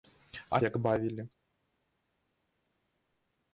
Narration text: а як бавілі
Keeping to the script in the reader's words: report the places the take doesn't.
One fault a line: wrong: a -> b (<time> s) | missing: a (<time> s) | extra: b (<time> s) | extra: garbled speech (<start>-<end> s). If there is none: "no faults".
no faults